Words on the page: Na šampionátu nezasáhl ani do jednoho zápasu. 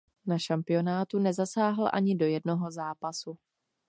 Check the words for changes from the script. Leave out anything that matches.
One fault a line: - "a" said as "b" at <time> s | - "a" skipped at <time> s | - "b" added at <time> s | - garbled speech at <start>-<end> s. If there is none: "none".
none